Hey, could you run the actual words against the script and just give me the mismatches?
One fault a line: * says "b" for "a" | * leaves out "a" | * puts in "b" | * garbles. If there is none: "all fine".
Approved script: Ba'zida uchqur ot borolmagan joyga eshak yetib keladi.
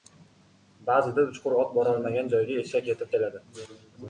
all fine